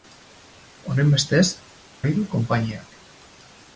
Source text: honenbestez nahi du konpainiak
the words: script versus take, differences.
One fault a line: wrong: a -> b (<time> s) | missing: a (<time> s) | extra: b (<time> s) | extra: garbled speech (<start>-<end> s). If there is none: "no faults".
no faults